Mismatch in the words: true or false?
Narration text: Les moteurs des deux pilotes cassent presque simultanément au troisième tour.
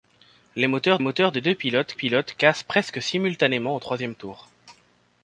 true